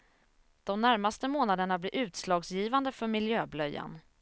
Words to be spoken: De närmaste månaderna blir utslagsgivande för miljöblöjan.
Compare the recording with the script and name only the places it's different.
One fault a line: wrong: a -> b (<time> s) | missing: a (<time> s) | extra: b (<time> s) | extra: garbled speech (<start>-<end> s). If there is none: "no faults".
no faults